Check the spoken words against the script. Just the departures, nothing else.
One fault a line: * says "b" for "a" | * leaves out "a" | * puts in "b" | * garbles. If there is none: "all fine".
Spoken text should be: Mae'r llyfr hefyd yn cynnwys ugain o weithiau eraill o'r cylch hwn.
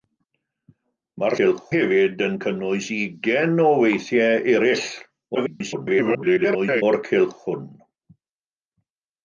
* says "cylch" for "llyfr"
* garbles